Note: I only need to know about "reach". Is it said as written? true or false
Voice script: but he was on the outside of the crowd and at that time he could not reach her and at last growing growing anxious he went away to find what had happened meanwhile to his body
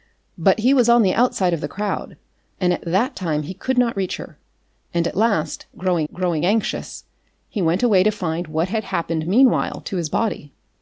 true